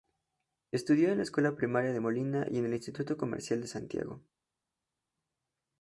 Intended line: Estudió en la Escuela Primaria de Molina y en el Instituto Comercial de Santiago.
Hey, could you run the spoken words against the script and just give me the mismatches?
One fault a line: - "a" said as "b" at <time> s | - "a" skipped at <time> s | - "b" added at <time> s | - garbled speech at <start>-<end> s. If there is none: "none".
none